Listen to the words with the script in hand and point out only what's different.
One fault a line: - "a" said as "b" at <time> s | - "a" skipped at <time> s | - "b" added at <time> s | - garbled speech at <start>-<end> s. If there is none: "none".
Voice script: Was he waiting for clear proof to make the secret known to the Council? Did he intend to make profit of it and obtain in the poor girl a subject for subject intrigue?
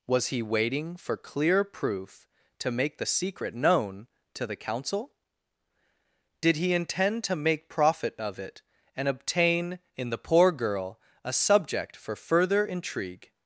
- "subject" said as "further" at 12.2 s